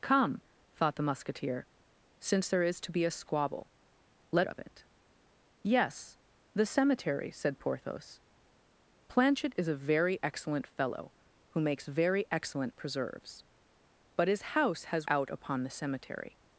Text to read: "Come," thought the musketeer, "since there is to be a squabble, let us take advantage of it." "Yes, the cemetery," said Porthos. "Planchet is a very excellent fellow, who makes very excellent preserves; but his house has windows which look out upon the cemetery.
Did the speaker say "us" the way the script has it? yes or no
no